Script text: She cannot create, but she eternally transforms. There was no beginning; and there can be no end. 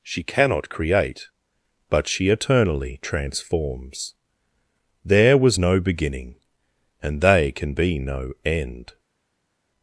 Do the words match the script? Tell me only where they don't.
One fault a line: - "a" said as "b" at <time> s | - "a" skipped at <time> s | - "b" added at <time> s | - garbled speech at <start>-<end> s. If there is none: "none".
- "there" said as "they" at 7.2 s